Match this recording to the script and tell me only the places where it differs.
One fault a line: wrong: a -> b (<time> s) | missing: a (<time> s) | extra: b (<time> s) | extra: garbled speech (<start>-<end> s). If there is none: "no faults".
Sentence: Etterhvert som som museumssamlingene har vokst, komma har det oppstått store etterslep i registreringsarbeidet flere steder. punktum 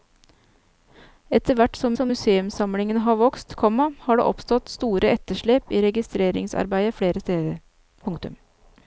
no faults